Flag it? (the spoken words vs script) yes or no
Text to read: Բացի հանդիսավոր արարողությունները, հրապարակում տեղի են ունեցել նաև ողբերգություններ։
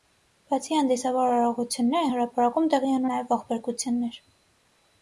yes